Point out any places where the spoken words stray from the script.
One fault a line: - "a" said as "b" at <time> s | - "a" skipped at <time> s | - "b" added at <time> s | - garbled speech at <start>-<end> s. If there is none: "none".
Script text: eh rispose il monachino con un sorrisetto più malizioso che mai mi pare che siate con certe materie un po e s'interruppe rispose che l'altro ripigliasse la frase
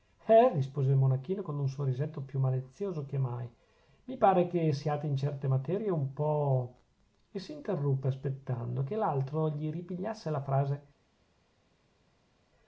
- "con" said as "in" at 5.0 s
- "rispose" said as "aspettando" at 8.1 s
- "gli" added at 9.5 s